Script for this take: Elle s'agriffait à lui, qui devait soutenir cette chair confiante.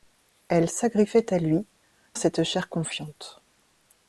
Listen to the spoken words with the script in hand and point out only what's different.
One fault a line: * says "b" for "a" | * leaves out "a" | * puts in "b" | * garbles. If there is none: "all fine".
* leaves out "qui devait soutenir"